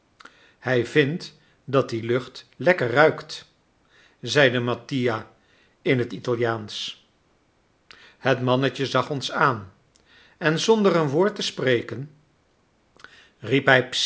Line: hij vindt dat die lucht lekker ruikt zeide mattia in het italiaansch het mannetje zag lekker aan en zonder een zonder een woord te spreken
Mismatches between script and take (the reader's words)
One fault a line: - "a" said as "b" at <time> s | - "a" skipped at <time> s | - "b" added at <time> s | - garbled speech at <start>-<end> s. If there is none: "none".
- "lekker" said as "ons" at 9.1 s
- "zonder een" skipped at 11.1 s